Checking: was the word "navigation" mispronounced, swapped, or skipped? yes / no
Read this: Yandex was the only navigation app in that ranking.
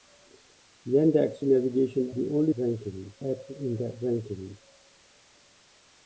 yes